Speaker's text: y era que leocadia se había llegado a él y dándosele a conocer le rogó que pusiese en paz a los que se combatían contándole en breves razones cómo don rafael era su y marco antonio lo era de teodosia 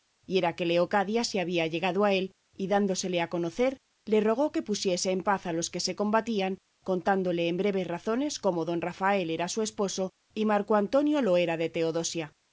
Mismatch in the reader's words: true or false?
true